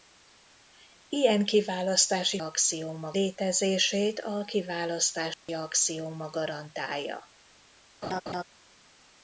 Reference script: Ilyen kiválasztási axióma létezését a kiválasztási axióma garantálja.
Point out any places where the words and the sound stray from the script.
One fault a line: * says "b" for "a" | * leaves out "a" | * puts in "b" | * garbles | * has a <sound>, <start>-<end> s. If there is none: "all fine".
* has a dropout, 5.3-5.5 s
* has a laugh, 8.0-8.4 s